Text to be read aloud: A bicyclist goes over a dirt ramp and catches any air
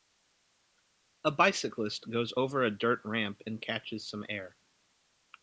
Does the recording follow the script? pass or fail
fail